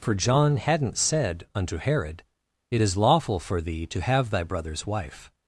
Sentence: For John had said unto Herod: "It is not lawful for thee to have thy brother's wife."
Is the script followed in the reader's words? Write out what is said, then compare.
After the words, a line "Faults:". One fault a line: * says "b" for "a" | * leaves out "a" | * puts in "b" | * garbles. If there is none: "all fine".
For John hadn't said unto Herod: "It is lawful for thee to have thy brother's wife."
Faults:
* says "hadn't" for "had"
* leaves out "not"